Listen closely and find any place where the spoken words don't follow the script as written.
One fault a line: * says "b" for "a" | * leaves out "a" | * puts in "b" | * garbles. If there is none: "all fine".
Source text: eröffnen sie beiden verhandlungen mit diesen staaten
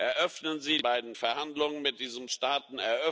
all fine